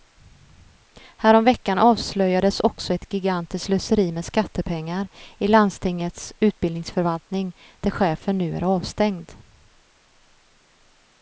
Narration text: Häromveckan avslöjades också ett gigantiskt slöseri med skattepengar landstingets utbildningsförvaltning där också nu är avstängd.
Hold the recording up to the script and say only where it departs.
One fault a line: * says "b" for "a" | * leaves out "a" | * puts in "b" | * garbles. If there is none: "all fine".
* puts in "i"
* says "chefen" for "också"